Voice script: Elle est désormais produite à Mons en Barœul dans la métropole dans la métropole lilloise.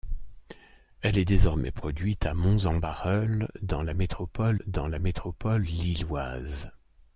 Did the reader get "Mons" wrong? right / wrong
right